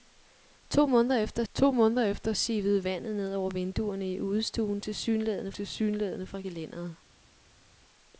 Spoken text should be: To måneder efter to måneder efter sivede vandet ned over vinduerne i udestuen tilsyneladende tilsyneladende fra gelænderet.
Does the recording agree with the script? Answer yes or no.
yes